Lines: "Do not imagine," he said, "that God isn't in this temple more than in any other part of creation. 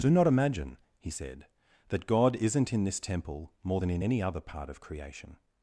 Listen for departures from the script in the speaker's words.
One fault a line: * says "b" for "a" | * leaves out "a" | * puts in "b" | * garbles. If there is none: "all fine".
all fine